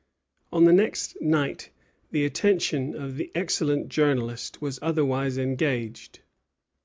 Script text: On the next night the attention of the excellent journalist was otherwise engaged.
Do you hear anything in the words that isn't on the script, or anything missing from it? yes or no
no